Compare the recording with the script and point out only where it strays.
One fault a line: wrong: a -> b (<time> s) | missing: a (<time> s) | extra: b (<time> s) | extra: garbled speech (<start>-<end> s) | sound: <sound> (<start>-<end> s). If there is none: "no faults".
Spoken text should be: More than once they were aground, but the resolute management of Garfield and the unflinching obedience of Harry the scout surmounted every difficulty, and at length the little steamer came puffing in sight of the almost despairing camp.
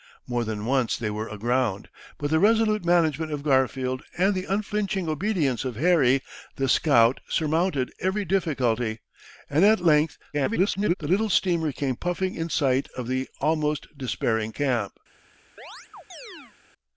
extra: garbled speech (10.3-10.9 s)
sound: chirp (15.6-16.6 s)